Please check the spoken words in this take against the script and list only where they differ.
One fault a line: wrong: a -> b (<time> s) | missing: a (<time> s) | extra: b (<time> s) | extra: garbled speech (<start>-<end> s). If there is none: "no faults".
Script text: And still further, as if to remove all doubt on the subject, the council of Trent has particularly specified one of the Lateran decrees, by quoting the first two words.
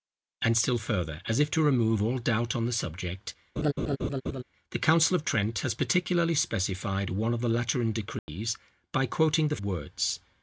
missing: first two (9.6 s)